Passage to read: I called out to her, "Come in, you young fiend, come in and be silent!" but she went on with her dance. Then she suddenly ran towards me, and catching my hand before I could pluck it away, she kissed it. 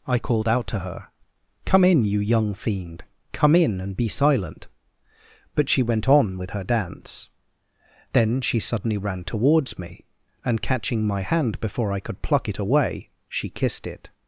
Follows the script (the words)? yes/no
yes